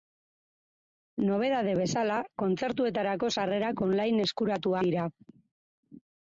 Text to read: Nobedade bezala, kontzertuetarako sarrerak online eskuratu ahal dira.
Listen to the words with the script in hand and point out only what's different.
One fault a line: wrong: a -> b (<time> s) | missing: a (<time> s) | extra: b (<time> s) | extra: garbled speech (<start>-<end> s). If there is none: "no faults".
missing: ahal (4.8 s)